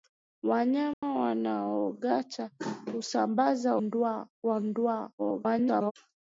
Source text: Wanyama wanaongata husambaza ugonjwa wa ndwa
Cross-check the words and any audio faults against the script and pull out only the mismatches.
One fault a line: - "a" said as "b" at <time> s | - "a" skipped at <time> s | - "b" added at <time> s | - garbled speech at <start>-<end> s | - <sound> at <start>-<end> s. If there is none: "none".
- dropout at 0.9-1.0 s
- "ugonjwa" said as "ndwa" at 3.8 s
- garbled speech at 5.2-5.9 s